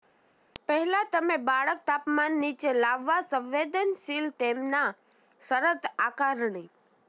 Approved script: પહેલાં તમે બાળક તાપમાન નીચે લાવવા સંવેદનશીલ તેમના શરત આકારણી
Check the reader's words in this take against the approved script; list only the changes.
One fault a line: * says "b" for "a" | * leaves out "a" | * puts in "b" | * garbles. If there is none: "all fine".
all fine